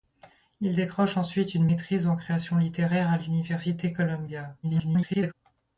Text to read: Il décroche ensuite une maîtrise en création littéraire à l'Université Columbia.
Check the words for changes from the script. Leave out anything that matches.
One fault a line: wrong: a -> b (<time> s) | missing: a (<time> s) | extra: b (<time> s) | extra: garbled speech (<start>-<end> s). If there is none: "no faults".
extra: garbled speech (4.6-5.3 s)